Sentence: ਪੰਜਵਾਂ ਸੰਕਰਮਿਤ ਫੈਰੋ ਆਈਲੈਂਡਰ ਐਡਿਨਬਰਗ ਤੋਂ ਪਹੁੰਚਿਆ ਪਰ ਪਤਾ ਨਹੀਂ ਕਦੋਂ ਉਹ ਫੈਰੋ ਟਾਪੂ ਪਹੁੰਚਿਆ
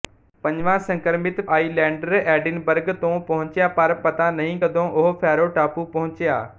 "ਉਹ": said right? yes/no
yes